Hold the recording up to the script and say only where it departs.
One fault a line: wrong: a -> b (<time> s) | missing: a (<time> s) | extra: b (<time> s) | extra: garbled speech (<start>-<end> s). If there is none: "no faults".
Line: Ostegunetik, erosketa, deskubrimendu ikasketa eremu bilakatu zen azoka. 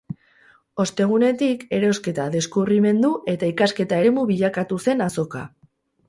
extra: eta (3.4 s)